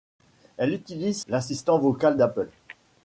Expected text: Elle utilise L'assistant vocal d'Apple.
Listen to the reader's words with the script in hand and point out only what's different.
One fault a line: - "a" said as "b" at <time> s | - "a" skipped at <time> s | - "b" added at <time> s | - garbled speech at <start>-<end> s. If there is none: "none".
none